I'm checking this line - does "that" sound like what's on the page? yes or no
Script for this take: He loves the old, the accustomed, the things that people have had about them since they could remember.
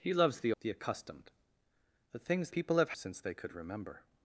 no